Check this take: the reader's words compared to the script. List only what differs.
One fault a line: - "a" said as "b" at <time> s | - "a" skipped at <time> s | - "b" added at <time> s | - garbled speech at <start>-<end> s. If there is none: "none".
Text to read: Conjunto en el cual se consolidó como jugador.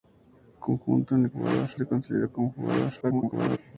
- "cual" said as "jugador" at 1.3 s
- garbled speech at 3.0-3.6 s